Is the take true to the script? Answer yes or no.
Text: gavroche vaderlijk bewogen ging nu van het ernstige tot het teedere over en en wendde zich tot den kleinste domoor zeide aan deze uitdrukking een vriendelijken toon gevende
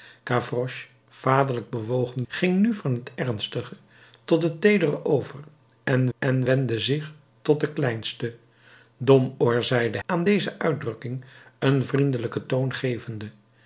yes